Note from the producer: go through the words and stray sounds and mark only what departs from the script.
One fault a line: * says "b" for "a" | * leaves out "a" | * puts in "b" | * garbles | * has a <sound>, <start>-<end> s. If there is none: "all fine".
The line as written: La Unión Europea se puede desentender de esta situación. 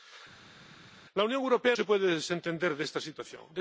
all fine